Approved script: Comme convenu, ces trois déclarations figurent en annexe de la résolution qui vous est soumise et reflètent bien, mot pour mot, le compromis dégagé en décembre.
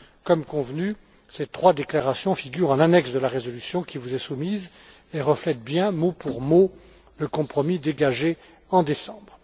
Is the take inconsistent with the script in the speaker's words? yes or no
no